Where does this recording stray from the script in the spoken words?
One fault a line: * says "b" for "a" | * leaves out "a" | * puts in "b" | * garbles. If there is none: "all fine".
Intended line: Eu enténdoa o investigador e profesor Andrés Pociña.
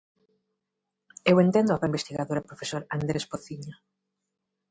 all fine